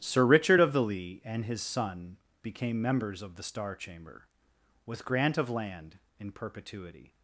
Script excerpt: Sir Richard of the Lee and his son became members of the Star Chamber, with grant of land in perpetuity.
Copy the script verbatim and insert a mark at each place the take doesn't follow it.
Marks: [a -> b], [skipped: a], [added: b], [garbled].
Sir Richard of the Lee and his son became members of the Star Chamber, with grant of land in perpetuity.